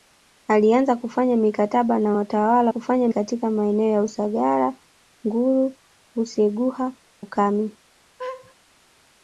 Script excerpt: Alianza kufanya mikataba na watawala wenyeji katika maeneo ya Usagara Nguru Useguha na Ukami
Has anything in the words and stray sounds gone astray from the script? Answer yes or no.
yes